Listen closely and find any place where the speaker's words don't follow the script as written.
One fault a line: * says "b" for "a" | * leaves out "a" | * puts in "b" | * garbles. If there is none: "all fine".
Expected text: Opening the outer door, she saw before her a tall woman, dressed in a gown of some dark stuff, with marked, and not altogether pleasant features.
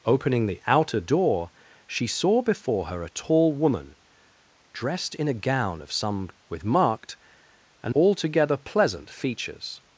* leaves out "dark stuff"
* leaves out "not"